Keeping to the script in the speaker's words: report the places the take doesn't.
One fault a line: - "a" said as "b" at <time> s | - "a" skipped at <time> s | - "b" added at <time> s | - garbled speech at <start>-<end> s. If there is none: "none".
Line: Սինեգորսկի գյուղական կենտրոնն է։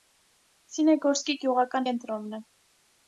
none